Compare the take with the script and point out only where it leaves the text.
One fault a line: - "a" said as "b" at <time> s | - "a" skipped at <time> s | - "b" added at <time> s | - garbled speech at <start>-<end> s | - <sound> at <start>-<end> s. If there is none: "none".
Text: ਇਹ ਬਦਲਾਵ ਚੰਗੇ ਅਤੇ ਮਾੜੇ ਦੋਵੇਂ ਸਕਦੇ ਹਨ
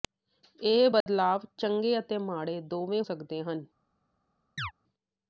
- dropout at 1.0-1.1 s
- chirp at 4.6-4.7 s